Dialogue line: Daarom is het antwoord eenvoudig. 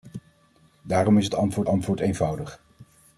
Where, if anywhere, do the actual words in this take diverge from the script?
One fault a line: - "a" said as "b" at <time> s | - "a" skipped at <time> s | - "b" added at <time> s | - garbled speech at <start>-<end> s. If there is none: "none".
- "antwoord" added at 1.6 s